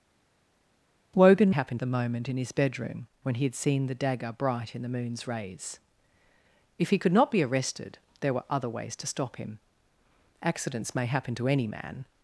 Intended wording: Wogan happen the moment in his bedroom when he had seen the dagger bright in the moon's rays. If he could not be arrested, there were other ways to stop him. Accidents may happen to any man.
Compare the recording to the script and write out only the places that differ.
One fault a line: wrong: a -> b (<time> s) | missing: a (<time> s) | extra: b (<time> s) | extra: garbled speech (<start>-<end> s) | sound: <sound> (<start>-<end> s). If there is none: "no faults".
no faults